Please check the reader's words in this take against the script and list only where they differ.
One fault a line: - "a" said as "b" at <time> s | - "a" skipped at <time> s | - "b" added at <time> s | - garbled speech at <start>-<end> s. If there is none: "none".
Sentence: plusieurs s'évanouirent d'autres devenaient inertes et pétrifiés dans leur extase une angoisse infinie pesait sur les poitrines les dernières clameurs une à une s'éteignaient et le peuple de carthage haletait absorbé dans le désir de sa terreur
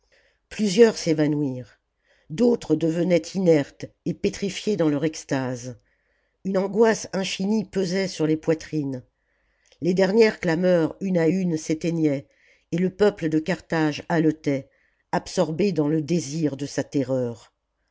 none